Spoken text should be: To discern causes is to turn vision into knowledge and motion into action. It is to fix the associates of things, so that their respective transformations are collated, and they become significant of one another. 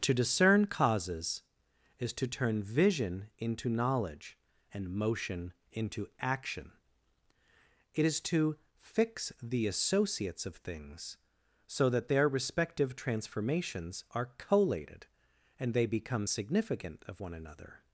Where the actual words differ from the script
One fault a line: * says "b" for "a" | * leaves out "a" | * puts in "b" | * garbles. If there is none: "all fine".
all fine